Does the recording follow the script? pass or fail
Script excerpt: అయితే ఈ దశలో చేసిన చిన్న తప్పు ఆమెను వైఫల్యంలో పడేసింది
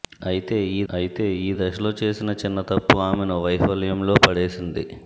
fail